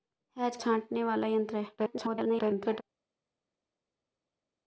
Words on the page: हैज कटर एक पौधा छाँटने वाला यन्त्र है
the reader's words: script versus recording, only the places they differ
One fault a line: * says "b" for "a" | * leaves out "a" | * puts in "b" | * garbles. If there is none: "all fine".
* leaves out "कटर एक पौधा"
* garbles